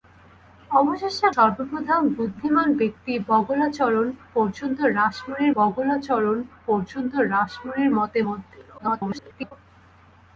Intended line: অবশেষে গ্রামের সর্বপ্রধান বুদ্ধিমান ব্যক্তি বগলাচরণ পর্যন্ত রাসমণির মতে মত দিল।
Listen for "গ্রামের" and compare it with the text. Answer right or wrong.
wrong